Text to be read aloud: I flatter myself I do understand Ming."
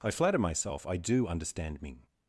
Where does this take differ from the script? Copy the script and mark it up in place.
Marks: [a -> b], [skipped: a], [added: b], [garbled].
I flatter myself I do understand Ming."